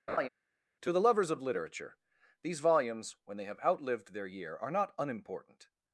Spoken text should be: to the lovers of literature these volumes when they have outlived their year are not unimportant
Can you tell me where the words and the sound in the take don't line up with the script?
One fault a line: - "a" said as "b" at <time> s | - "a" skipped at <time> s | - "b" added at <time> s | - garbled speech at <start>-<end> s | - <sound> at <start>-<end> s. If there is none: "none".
- laugh at 0.1-0.3 s